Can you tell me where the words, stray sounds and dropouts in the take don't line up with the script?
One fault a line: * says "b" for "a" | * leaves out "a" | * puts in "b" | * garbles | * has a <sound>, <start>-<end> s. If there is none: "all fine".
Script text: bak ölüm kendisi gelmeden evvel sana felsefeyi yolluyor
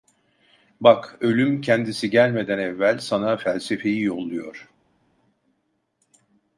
all fine